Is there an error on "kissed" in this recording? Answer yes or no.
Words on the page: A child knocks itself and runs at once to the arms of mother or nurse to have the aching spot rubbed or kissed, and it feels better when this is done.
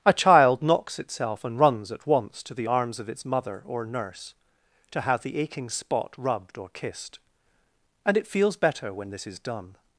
no